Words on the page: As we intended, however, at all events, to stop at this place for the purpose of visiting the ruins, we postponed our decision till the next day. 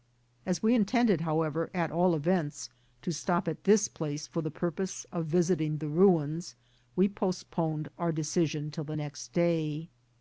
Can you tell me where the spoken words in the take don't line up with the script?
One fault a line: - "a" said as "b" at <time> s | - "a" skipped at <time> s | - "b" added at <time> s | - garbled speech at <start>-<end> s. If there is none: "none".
none